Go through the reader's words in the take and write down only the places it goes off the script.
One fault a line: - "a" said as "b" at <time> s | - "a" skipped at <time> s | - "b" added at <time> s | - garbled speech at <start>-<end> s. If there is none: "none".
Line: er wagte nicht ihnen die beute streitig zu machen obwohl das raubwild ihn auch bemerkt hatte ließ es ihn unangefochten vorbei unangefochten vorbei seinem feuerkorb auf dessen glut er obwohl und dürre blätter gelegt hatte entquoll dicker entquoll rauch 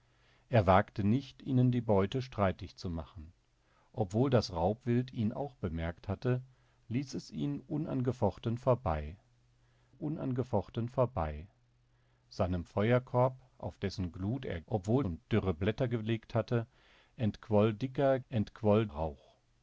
none